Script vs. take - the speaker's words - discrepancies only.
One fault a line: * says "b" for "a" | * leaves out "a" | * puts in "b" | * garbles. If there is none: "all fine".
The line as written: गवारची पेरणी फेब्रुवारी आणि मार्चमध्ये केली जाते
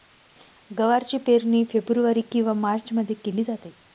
* says "किंवा" for "आणि"